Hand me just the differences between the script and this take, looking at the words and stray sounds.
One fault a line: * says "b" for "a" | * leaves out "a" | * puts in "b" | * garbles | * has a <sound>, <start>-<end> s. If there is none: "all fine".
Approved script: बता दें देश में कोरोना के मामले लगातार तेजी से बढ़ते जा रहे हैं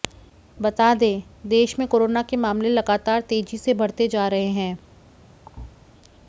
* has a thud, 5.5-5.8 s